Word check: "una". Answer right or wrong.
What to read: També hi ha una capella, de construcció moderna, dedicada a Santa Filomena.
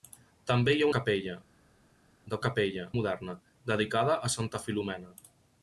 wrong